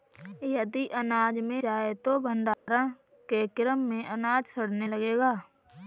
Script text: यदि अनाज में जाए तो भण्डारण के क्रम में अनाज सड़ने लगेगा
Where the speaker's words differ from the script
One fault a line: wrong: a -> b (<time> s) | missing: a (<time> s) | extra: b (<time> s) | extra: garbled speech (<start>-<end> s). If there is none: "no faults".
no faults